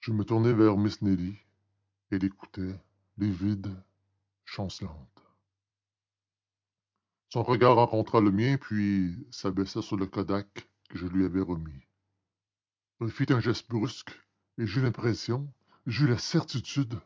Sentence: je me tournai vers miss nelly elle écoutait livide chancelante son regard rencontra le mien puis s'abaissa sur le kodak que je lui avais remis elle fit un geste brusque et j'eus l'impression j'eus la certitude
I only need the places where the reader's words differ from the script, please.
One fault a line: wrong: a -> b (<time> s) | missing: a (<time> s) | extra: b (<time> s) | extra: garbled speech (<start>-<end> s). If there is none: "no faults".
no faults